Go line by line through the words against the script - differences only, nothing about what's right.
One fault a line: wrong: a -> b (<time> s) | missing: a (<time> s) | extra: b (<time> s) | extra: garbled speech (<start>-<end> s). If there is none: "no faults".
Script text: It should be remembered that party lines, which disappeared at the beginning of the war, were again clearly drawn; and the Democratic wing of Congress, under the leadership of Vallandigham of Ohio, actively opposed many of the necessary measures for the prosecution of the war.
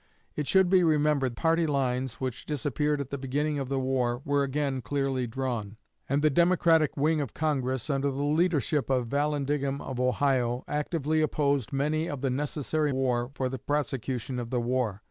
missing: that (1.4 s)
wrong: measures -> war (12.9 s)